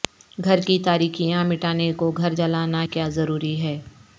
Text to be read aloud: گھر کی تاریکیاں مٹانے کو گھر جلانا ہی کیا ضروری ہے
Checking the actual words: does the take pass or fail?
fail